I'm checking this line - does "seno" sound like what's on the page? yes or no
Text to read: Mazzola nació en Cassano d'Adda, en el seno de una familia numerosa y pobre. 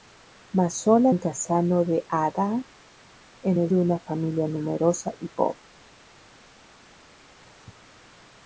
no